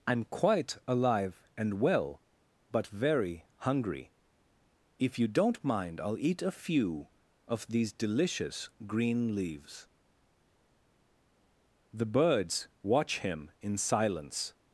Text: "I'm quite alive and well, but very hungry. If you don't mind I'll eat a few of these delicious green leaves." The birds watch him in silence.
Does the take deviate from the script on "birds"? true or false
false